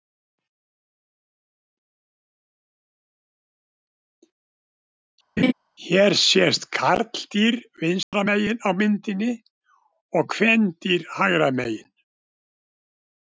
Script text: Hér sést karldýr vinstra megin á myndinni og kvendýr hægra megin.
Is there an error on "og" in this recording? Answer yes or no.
no